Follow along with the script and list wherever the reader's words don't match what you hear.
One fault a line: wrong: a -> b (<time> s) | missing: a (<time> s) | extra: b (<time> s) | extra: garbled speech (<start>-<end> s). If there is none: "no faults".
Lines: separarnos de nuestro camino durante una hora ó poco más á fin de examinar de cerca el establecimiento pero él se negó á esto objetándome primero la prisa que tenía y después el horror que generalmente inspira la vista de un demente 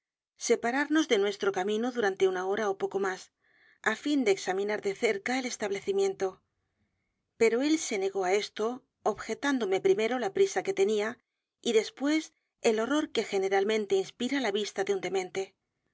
no faults